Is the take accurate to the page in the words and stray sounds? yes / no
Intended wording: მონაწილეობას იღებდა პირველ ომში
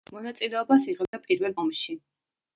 no